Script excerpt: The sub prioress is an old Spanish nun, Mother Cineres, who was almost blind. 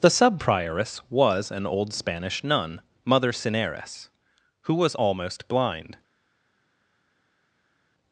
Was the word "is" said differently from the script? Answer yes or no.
yes